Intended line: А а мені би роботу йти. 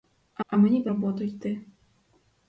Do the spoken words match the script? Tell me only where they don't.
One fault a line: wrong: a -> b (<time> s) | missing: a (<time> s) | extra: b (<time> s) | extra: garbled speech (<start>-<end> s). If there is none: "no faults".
no faults